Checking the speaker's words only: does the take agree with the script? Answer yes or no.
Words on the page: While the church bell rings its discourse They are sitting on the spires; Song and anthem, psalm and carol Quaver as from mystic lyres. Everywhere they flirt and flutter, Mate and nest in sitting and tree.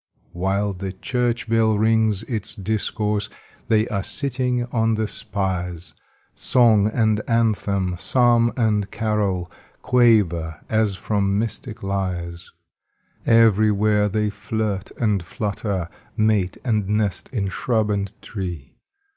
no